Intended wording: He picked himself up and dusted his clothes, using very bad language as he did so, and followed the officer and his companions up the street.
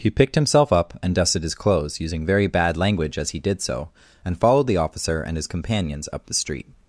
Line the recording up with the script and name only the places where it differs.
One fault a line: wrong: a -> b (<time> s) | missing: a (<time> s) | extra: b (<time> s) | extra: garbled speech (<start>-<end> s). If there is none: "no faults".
no faults